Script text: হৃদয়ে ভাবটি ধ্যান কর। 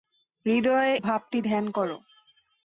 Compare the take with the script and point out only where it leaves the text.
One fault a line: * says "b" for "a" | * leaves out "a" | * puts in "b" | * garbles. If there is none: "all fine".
all fine